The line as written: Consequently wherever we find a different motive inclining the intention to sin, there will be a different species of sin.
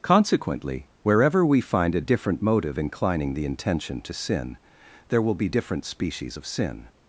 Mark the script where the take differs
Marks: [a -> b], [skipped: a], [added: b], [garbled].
Consequently wherever we find a different motive inclining the intention to sin, there will be [skipped: a] different species of sin.